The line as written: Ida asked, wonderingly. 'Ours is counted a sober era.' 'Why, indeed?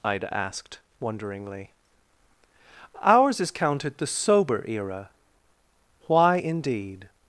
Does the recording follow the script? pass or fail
fail